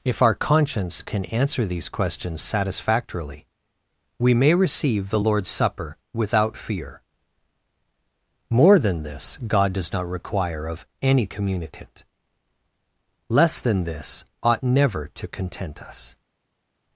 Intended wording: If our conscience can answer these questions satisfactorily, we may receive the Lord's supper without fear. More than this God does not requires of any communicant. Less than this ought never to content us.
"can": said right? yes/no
yes